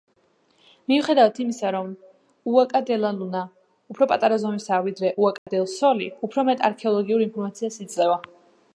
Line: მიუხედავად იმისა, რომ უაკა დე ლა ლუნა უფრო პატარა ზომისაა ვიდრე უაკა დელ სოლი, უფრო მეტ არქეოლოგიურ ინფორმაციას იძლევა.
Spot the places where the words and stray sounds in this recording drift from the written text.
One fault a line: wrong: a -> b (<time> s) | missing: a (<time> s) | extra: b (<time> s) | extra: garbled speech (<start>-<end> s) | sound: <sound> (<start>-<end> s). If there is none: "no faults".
sound: dropout (5.4-5.5 s)